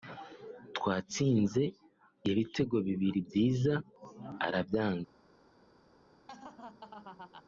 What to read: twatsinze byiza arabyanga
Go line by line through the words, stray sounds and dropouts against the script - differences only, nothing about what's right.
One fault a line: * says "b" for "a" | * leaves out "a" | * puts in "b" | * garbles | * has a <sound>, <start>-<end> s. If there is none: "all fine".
* puts in "ibitego bibiri"
* has a laugh, 6.3-7.4 s